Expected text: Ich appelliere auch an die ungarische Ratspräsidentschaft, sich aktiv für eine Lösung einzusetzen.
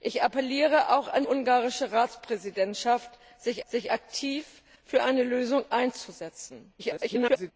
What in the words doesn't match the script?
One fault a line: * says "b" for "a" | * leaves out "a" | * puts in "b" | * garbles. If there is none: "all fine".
* leaves out "die"
* puts in "sich"
* garbles